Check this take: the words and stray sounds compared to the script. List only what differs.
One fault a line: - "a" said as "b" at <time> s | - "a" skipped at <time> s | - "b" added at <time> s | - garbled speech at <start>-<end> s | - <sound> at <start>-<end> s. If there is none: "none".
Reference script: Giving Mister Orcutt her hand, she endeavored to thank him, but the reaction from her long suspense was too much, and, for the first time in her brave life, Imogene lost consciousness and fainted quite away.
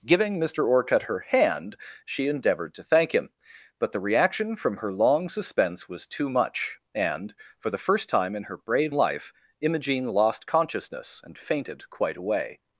none